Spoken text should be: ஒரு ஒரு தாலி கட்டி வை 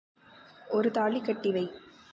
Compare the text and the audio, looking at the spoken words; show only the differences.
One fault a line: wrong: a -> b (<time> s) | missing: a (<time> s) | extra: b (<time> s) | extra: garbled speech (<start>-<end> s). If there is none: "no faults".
missing: ஒரு (0.9 s)